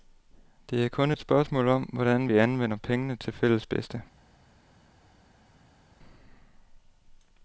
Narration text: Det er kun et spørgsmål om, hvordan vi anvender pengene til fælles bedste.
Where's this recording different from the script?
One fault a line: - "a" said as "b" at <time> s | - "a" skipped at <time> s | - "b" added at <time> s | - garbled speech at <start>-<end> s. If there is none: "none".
none